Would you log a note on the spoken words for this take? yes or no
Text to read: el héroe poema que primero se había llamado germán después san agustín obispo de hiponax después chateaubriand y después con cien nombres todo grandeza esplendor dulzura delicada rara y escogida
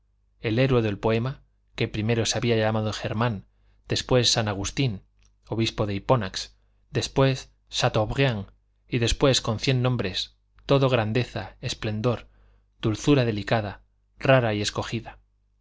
yes